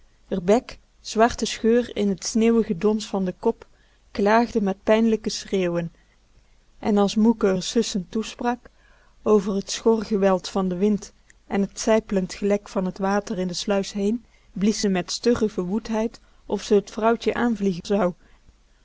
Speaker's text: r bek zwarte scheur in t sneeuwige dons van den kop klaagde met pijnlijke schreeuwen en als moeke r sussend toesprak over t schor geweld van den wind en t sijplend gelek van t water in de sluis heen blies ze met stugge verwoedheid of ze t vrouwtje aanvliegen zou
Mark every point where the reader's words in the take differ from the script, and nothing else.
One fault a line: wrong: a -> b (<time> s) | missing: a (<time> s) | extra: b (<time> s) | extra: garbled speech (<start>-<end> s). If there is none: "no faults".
no faults